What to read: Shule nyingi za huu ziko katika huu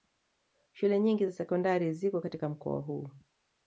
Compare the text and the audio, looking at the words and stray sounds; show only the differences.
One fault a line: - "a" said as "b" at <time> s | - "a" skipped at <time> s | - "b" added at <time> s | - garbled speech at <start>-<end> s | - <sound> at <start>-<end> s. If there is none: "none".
- "huu" said as "sekondari" at 1.3 s
- "mkoa" added at 2.5 s